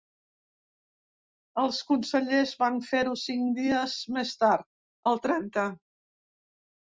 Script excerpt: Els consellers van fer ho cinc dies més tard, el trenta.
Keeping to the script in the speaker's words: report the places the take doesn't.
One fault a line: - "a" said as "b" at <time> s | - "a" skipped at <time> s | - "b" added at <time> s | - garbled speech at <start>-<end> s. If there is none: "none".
none